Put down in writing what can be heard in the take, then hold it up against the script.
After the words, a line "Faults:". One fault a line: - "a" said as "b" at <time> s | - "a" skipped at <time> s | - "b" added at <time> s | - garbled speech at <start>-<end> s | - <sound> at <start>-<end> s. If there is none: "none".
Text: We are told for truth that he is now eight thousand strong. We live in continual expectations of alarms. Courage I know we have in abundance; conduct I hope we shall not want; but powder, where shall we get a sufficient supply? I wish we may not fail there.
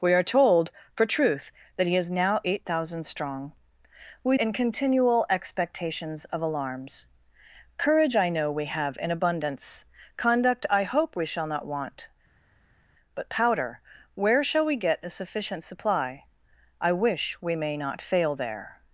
We are told for truth that he is now eight thousand strong. We in continual expectations of alarms. Courage I know we have in abundance; conduct I hope we shall not want; but powder, where shall we get a sufficient supply? I wish we may not fail there.
Faults:
- "live" skipped at 4.4 s